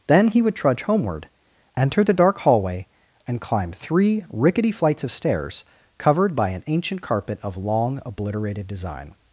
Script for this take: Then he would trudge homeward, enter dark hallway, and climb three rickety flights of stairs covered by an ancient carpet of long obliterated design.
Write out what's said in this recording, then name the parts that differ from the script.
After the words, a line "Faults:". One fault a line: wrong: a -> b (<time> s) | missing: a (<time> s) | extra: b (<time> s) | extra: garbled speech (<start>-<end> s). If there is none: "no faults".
Then he would trudge homeward, enter the dark hallway, and climb three rickety flights of stairs covered by an ancient carpet of long obliterated design.
Faults:
extra: the (2.0 s)